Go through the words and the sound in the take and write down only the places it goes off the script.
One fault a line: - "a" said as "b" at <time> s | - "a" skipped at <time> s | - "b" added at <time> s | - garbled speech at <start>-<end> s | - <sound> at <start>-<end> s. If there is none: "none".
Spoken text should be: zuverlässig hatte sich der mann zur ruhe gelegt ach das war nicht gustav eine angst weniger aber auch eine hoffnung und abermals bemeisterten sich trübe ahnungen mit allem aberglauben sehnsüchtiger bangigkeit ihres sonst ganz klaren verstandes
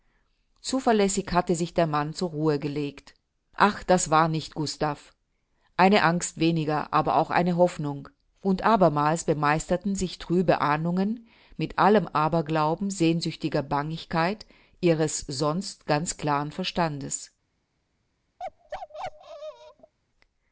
- bark at 18.4-19.9 s